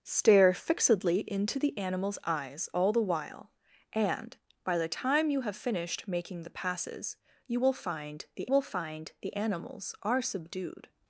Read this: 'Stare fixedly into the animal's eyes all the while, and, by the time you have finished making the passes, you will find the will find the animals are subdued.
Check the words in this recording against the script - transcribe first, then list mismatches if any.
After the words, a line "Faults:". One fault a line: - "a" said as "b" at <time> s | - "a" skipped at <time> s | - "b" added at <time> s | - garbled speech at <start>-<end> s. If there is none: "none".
'Stare fixedly into the animal's eyes all the while, and, by the time you have finished making the passes, you will find the will find the animals are subdued.
Faults:
none